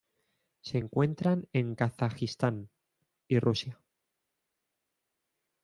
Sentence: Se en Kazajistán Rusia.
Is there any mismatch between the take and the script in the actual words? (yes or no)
yes